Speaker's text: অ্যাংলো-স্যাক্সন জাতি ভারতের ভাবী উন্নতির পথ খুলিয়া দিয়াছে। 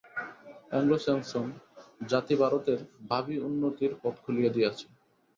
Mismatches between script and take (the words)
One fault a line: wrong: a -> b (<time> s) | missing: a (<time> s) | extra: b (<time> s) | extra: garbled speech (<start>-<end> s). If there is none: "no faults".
no faults